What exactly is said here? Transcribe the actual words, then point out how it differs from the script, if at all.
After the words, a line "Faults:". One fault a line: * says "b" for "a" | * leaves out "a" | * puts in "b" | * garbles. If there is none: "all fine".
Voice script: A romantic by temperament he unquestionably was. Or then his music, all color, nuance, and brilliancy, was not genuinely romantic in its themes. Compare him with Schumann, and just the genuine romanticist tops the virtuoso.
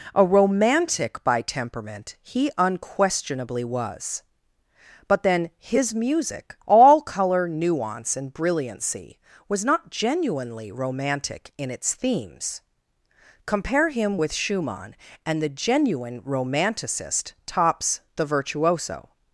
A romantic by temperament he unquestionably was. But then his music, all color, nuance, and brilliancy, was not genuinely romantic in its themes. Compare him with Schumann, and the genuine romanticist tops the virtuoso.
Faults:
* says "But" for "Or"
* leaves out "just"